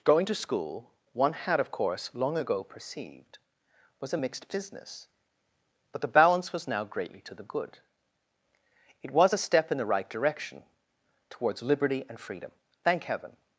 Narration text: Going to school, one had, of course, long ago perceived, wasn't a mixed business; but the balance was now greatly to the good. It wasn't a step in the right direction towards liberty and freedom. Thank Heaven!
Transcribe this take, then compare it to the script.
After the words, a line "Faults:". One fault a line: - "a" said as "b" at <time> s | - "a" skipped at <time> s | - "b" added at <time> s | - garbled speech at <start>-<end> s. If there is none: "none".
Going to school, one had, of course, long ago perceived, was a mixed business; but the balance was now greatly to the good. It was a step in the right direction towards liberty and freedom. Thank Heaven!
Faults:
- "wasn't" said as "was" at 4.0 s
- "wasn't" said as "was" at 9.1 s